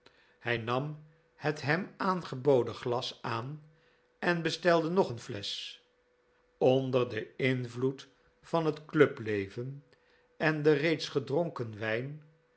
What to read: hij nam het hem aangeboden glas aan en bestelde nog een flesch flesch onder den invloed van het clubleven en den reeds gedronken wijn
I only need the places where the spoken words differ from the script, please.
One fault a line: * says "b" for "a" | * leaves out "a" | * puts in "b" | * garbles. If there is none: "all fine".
* leaves out "flesch"